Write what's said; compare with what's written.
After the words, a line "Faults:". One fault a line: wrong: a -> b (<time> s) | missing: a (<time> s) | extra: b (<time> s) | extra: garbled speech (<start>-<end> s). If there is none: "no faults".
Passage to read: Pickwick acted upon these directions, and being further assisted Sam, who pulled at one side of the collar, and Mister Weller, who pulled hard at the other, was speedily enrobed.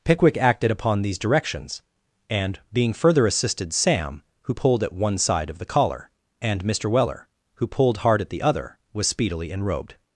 Pickwick acted upon these directions, and being further assisted Sam, who pulled at one side of the collar, and Mister Weller, who pulled hard at the other, was speedily enrobed.
Faults:
no faults